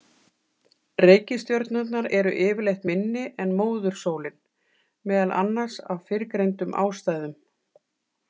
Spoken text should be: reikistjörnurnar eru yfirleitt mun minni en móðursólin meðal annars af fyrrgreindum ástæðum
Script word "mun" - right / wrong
wrong